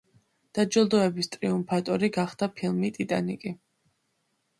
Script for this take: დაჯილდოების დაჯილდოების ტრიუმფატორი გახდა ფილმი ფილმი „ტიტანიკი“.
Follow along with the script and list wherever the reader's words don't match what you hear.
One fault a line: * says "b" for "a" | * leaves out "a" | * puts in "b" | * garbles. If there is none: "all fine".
* leaves out "დაჯილდოების"
* leaves out "ფილმი"